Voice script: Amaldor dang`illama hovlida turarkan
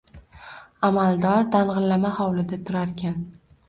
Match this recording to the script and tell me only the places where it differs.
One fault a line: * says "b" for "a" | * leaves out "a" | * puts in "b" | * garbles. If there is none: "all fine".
all fine